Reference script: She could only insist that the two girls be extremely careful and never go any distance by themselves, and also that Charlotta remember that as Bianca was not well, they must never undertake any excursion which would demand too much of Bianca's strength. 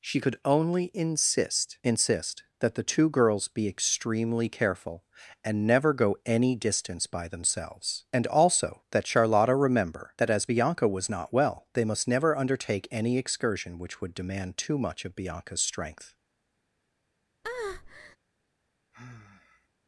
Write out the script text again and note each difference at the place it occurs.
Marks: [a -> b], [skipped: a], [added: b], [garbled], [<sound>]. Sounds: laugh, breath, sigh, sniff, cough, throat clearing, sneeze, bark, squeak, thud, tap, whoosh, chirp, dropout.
She could only insist [added: insist] that the two girls be extremely careful and never go any distance by themselves, and also that Charlotta remember that as Bianca was not well, they must never undertake any excursion which would demand too much of Bianca's strength. [breath] [sigh]